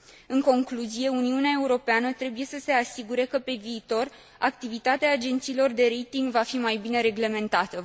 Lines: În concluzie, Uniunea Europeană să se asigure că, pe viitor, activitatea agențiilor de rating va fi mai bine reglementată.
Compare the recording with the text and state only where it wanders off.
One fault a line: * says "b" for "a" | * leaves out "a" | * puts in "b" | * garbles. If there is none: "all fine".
* puts in "trebuie"